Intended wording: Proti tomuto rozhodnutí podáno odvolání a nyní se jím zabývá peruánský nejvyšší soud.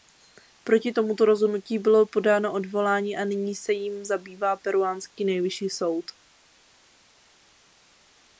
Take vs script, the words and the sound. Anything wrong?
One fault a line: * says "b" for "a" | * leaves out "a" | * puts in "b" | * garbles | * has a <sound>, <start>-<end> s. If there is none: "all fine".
* puts in "bylo"